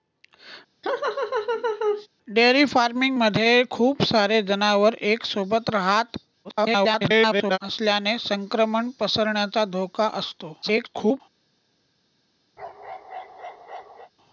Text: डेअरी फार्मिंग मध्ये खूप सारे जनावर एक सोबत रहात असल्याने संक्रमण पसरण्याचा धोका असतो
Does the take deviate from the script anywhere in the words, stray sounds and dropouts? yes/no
yes